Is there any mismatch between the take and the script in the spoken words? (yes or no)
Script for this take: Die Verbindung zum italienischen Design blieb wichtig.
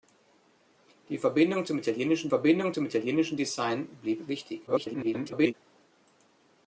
yes